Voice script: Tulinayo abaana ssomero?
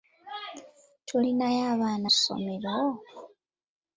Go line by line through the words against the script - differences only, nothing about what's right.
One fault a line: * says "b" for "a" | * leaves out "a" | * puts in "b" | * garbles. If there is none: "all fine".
all fine